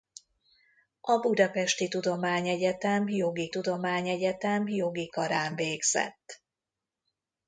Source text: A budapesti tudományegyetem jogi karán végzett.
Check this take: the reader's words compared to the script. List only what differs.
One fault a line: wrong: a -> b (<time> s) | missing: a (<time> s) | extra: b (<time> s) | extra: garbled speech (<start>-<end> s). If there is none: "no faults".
extra: tudományegyetem jogi (3.5 s)